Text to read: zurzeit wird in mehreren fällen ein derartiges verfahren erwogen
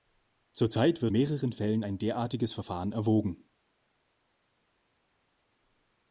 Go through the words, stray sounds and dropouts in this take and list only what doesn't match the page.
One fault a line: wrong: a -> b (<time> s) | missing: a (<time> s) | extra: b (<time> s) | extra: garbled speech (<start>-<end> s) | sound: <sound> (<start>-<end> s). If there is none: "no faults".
missing: in (1.1 s)